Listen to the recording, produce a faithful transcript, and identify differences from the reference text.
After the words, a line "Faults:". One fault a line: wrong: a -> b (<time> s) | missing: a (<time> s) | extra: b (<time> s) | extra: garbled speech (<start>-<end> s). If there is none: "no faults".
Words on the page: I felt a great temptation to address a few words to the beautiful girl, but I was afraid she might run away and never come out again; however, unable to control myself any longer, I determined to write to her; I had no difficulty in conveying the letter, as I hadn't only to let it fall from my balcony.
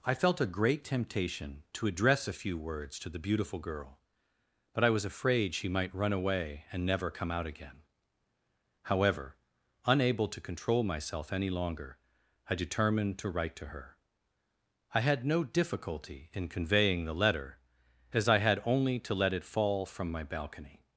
I felt a great temptation to address a few words to the beautiful girl, but I was afraid she might run away and never come out again; however, unable to control myself any longer, I determined to write to her; I had no difficulty in conveying the letter, as I had only to let it fall from my balcony.
Faults:
wrong: hadn't -> had (18.4 s)